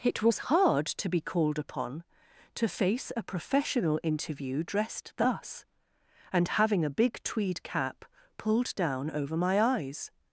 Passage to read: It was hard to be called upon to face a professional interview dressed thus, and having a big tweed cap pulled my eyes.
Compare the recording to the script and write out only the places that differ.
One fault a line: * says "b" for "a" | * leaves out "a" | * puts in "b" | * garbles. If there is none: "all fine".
* puts in "down over"